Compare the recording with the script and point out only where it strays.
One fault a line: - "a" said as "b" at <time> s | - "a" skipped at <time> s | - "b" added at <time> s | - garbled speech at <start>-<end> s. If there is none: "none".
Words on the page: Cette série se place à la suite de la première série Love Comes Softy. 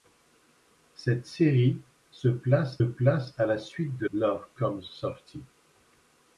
- "place" added at 2.8 s
- "la première série" skipped at 4.1 s